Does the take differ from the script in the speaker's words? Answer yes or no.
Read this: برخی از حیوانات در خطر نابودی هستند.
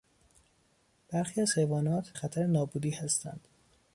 yes